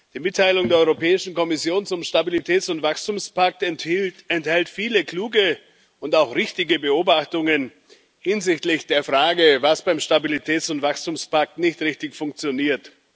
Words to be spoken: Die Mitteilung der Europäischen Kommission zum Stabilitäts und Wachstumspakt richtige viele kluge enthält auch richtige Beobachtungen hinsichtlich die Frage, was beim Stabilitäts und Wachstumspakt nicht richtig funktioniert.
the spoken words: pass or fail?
fail